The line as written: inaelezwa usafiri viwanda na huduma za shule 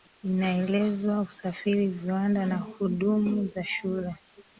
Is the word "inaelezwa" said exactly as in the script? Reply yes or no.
yes